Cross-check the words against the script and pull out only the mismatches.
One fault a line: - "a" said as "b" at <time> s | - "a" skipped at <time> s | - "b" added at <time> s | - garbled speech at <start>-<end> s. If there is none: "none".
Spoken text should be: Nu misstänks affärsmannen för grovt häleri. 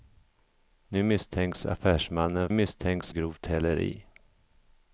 - "för" said as "misstänks" at 2.5 s